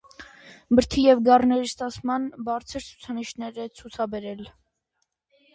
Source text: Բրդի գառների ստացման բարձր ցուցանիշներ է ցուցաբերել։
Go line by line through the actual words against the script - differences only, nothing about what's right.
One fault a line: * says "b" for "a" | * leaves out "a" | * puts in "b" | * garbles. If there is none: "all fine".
* puts in "և"